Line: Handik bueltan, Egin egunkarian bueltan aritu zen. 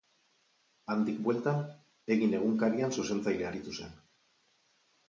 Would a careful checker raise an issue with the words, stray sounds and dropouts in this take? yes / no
yes